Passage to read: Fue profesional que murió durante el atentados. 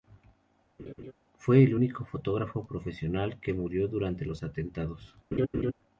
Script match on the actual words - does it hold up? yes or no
no